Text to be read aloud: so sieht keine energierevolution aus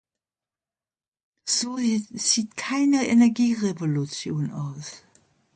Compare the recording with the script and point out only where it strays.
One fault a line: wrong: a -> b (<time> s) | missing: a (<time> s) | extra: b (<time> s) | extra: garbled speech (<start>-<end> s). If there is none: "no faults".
no faults